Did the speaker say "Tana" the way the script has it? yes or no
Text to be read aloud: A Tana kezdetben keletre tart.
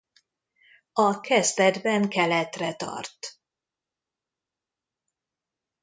no